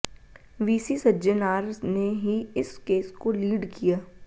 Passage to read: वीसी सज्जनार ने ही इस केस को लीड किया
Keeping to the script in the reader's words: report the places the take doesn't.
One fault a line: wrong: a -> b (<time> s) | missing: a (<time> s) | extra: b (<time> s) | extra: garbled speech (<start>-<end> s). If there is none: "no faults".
no faults